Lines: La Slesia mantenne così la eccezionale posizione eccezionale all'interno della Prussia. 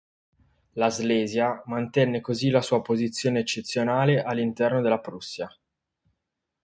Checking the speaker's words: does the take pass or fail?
fail